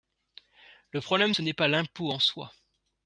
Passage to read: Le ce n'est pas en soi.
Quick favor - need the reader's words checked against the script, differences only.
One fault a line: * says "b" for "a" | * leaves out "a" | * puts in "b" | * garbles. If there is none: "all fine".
* puts in "problème"
* puts in "l'impôt"